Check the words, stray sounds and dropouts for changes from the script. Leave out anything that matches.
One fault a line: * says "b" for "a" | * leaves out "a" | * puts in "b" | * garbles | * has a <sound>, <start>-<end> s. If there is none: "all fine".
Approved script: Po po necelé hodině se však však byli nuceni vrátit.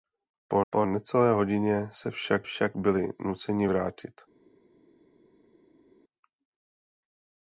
all fine